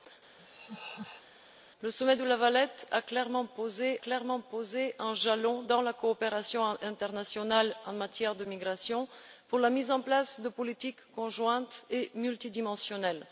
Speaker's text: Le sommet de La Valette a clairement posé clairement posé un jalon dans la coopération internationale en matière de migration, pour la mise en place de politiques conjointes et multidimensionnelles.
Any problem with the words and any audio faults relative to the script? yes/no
yes